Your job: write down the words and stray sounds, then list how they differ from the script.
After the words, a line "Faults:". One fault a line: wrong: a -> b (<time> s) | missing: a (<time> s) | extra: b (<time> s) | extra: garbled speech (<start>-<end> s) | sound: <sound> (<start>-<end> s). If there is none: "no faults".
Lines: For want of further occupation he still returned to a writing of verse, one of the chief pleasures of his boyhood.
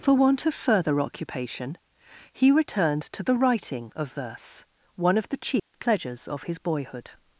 For want of further occupation he returned to the writing of verse, one of the chief pleasures of his boyhood.
Faults:
missing: still (2.5 s)
wrong: a -> the (3.2 s)
sound: dropout (5.6-5.7 s)